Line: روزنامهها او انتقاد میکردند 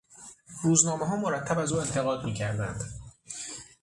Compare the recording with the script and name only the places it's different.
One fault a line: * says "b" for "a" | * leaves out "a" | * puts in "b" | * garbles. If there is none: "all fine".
* puts in "مرتب از"